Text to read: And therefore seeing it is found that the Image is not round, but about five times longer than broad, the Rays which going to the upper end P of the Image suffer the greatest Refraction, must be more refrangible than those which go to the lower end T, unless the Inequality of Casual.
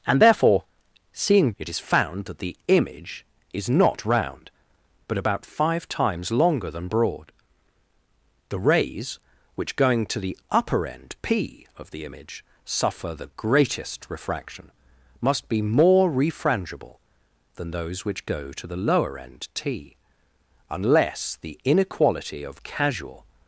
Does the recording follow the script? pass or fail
pass